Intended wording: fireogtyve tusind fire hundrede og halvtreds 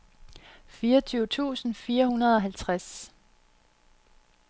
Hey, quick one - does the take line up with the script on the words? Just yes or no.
yes